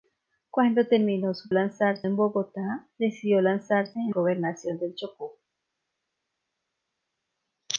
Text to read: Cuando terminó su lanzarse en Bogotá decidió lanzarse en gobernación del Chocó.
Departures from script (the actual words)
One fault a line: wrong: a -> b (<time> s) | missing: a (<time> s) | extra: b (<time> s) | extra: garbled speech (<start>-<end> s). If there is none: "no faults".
no faults